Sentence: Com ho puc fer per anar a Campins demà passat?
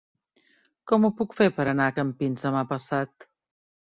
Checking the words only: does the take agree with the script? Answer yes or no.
yes